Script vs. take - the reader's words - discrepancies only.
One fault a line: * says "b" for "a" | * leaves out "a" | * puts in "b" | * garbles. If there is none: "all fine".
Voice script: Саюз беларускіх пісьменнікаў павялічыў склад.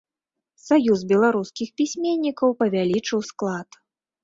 all fine